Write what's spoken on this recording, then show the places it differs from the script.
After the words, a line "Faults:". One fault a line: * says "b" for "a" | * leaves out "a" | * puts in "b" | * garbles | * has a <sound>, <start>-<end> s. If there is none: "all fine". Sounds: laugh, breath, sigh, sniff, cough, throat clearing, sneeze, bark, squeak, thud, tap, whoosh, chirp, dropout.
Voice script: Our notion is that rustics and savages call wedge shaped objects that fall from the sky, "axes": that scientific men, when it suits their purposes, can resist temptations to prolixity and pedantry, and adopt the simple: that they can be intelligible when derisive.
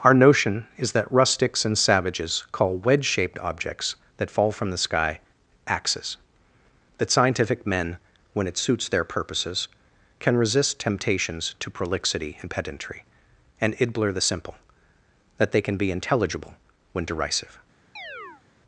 Our notion is that rustics and savages call wedge shaped objects that fall from the sky, "axes": that scientific men, when it suits their purposes, can resist temptations to prolixity and pedantry, and idbler the simple: that they can be intelligible when derisive.
Faults:
* says "idbler" for "adopt"
* has a chirp, 18.0-18.4 s